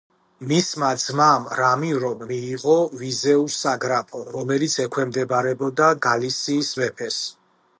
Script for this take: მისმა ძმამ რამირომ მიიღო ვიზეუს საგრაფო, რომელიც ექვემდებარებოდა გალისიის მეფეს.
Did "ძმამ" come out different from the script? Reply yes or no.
no